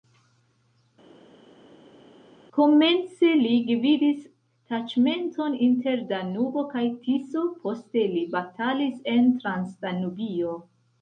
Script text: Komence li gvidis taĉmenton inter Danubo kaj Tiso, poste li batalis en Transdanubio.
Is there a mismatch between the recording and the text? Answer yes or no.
no